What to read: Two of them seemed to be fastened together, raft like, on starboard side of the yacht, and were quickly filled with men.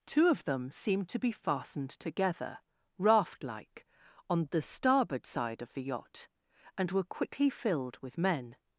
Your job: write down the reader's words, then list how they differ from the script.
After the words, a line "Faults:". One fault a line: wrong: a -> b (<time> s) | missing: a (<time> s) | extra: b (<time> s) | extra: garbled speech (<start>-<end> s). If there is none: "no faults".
Two of them seemed to be fastened together, raft like, on the starboard side of the yacht, and were quickly filled with men.
Faults:
extra: the (4.5 s)